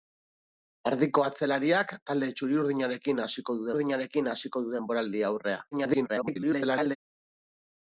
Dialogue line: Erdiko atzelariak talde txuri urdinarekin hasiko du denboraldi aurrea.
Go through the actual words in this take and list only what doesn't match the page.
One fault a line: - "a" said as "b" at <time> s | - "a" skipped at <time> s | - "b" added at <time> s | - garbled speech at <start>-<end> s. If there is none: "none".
- "urdinarekin hasiko du" added at 3.7 s
- garbled speech at 5.7-7.0 s